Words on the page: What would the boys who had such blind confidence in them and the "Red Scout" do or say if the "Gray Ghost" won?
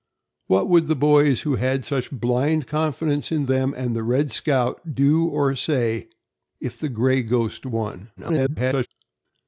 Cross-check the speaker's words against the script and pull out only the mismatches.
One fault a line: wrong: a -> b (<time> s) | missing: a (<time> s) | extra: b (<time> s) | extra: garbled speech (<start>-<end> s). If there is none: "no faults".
extra: garbled speech (8.2-8.9 s)